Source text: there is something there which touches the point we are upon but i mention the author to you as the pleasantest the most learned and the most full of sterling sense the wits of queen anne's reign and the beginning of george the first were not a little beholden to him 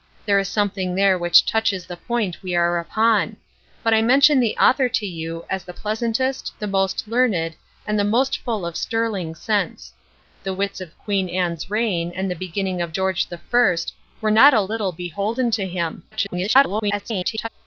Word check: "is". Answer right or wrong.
right